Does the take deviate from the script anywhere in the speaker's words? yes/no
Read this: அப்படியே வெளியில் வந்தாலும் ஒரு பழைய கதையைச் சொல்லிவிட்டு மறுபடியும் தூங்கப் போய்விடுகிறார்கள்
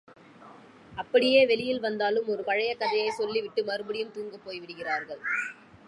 no